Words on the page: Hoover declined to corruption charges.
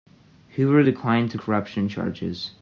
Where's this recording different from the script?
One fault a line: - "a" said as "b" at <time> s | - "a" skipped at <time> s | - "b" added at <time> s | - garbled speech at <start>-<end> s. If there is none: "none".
none